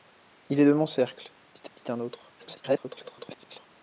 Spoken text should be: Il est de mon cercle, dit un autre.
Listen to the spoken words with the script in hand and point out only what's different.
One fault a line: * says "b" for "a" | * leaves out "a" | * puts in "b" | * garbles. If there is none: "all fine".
* puts in "dit"
* garbles